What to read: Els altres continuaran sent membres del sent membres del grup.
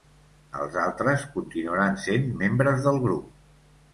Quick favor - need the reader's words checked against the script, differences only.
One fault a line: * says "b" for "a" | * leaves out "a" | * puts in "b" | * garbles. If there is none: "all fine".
* leaves out "sent membres del"